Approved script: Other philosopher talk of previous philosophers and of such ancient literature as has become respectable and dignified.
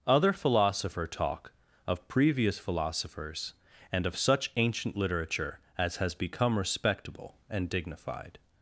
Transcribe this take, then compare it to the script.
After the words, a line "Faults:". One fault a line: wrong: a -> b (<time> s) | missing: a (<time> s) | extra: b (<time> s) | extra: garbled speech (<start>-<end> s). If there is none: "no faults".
Other philosopher talk of previous philosophers and of such ancient literature as has become respectable and dignified.
Faults:
no faults